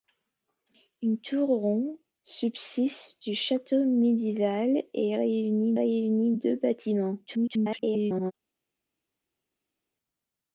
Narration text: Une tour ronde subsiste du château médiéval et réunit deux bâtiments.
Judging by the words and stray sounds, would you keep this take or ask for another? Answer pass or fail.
fail